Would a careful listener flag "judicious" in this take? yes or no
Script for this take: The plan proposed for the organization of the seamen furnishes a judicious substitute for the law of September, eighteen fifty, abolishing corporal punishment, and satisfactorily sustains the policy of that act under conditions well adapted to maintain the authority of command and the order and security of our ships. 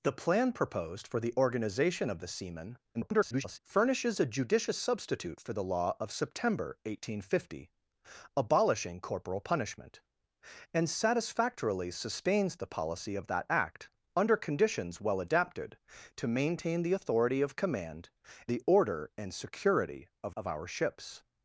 no